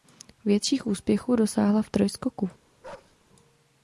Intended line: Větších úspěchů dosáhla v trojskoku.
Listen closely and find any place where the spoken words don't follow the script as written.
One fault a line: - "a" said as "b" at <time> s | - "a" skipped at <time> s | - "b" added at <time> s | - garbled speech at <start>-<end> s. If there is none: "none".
none